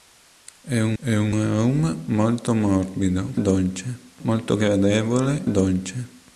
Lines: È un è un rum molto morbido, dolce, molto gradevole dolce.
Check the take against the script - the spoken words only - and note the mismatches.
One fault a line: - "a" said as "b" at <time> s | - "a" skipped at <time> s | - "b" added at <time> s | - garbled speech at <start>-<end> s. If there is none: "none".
none